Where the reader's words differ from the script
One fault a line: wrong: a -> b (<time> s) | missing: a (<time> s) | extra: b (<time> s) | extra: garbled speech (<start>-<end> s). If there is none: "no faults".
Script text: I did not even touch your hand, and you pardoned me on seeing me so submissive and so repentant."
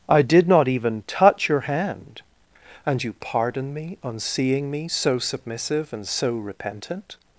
wrong: pardoned -> pardon (3.2 s)